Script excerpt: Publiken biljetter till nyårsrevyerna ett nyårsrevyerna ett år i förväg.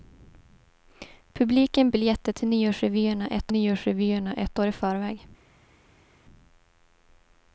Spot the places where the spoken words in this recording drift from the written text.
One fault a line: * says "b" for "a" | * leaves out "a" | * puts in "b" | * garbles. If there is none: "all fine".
all fine